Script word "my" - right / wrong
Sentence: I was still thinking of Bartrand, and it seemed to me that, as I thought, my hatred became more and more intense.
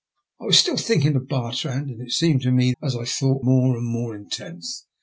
wrong